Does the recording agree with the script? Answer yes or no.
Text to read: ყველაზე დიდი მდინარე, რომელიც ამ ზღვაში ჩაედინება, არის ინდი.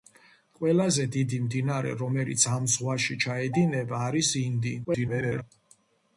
no